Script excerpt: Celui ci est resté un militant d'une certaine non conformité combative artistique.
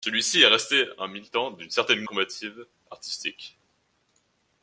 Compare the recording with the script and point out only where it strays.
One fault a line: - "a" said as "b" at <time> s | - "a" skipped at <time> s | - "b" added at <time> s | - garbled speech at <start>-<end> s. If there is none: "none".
- "non conformité" skipped at 2.0 s